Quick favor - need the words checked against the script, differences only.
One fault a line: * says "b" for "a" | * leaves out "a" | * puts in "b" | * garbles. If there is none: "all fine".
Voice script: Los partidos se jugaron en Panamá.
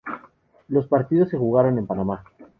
all fine